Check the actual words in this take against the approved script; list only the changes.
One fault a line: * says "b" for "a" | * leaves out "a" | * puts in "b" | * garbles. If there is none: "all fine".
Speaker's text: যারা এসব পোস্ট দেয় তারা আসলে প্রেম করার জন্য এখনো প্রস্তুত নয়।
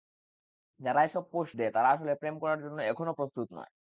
all fine